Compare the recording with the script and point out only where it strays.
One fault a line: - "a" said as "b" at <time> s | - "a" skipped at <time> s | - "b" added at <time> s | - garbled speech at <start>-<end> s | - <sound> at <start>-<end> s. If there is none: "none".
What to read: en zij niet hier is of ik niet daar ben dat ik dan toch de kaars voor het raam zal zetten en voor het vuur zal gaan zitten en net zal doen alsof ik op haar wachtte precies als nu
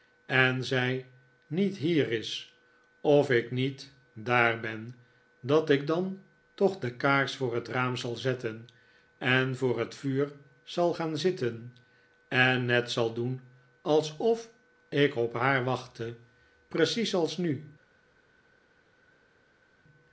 none